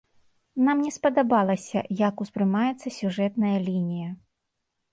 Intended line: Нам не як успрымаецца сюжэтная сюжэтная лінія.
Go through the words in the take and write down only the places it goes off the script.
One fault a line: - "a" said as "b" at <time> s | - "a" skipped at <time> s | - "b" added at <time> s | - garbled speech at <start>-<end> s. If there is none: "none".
- "спадабалася" added at 0.9 s
- "сюжэтная" skipped at 3.6 s